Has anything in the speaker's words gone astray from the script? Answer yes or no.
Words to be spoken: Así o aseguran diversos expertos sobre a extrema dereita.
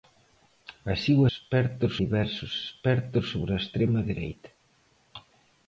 yes